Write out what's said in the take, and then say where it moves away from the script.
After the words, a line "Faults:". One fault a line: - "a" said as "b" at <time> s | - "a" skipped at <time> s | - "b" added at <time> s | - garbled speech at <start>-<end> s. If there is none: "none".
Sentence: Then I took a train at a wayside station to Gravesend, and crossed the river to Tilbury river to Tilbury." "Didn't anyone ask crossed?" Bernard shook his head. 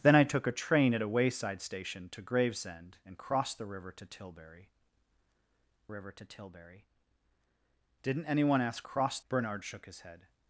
Then I took a train at a wayside station to Gravesend, and crossed the river to Tilbury river to Tilbury." "Didn't anyone ask crossed?" Bernard shook his head.
Faults:
none